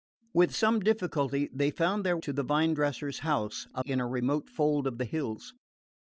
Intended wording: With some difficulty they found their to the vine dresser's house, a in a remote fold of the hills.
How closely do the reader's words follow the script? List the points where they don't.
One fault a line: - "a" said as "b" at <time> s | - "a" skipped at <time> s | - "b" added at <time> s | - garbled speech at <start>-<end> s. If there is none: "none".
none